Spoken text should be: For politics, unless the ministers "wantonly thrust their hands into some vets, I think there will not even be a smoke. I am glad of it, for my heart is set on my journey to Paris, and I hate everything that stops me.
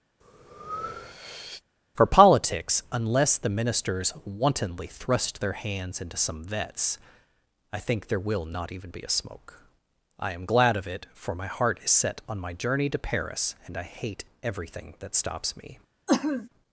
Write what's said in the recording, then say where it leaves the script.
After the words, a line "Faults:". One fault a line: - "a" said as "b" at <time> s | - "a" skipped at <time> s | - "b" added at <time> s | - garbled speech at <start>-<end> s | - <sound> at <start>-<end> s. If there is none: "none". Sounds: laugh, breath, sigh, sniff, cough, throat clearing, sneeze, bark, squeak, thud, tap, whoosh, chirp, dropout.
For politics, unless the ministers "wantonly thrust their hands into some vets, I think there will not even be a smoke. I am glad of it, for my heart is set on my journey to Paris, and I hate everything that stops me.
Faults:
- breath at 0.2-1.6 s
- sneeze at 16.1-16.5 s